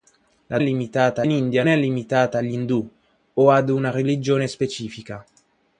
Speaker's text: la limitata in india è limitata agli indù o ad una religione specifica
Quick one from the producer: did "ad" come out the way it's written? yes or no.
yes